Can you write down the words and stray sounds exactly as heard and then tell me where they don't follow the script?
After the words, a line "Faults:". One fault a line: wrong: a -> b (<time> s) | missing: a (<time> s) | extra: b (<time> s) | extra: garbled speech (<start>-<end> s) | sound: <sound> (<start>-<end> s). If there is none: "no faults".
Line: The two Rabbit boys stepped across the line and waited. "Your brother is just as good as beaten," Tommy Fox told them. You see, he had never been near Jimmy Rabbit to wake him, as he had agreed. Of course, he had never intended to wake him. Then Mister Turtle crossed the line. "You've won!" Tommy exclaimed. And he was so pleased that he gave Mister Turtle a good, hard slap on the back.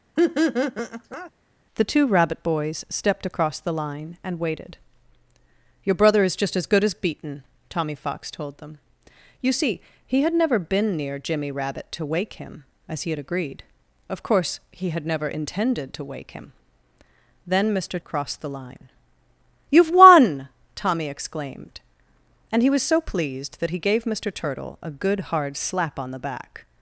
The two Rabbit boys stepped across the line and waited. "Your brother is just as good as beaten," Tommy Fox told them. You see, he had never been near Jimmy Rabbit to wake him, as he had agreed. Of course, he had never intended to wake him. Then Mister Crossed the line. "You've won!" Tommy exclaimed. And he was so pleased that he gave Mister Turtle a good, hard slap on the back.
Faults:
sound: laugh (0.2-1.3 s)
missing: Turtle (18.0 s)